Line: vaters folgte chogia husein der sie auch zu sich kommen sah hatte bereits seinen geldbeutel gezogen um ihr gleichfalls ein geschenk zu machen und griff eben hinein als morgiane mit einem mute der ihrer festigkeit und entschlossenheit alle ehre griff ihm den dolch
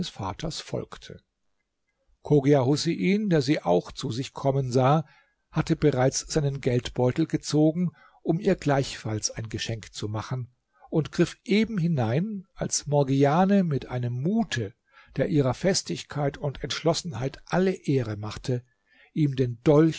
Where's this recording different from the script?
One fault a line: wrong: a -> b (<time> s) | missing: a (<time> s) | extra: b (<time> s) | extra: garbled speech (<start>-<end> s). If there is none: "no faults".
wrong: griff -> machte (18.2 s)